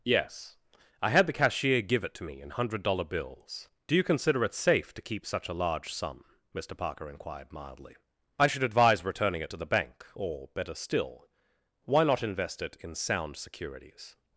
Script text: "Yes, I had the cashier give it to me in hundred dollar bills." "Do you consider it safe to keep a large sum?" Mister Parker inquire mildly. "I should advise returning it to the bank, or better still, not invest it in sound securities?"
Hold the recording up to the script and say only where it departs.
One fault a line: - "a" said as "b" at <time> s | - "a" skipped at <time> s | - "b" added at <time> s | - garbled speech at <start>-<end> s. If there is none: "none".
- "such" added at 5.3 s
- "inquire" said as "inquired" at 7.1 s
- "why" added at 11.9 s